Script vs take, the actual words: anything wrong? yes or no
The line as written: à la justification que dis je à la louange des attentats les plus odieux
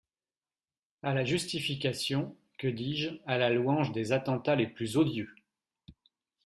no